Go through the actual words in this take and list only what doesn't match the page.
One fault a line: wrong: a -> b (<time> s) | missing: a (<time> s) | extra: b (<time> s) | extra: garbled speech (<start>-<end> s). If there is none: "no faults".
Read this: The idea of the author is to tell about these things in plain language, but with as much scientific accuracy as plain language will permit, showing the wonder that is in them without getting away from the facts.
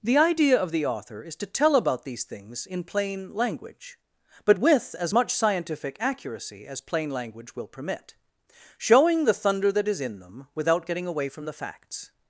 wrong: wonder -> thunder (9.3 s)